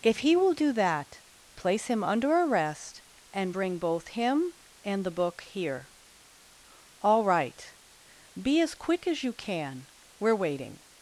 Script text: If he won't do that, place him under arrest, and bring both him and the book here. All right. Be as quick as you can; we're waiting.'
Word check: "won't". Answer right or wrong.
wrong